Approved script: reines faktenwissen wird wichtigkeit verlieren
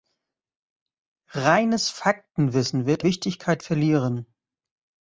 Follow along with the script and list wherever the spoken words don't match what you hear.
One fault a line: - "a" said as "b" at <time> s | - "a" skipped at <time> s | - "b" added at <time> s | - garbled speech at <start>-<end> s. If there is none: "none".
none